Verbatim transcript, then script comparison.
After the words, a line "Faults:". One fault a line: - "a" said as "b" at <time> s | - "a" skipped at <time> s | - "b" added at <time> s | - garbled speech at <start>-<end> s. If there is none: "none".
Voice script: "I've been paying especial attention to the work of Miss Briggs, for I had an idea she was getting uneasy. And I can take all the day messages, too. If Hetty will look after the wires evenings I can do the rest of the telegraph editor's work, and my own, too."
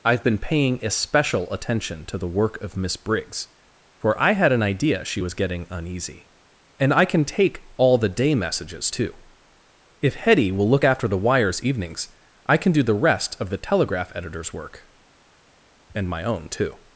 "I've been paying especial attention to the work of Miss Briggs, for I had an idea she was getting uneasy. And I can take all the day messages, too. If Hetty will look after the wires evenings I can do the rest of the telegraph editor's work, and my own, too."
Faults:
none